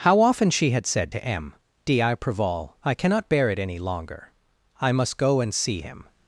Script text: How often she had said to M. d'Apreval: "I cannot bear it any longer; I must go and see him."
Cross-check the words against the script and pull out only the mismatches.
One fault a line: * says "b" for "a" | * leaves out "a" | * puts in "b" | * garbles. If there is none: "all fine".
all fine